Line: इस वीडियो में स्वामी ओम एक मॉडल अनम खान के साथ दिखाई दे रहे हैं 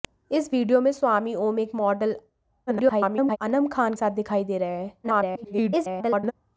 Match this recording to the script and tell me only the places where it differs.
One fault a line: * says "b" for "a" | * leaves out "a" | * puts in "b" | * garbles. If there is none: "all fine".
* garbles
* leaves out "के"
* garbles